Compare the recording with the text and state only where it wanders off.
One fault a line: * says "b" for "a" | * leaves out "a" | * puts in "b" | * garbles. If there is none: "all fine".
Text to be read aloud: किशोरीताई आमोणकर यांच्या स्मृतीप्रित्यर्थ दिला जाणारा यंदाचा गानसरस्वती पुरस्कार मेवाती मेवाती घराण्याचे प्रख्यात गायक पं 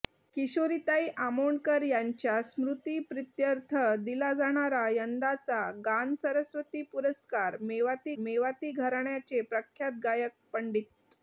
all fine